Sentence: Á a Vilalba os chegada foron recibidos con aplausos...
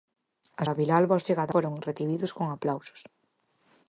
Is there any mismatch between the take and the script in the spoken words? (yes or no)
no